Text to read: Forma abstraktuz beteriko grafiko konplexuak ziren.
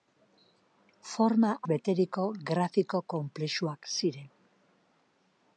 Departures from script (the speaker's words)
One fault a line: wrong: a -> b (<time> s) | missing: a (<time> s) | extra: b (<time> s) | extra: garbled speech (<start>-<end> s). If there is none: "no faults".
missing: abstraktuz (1.5 s)